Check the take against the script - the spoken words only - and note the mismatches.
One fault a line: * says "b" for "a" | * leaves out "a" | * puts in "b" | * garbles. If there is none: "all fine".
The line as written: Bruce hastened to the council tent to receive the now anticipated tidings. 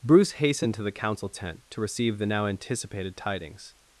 all fine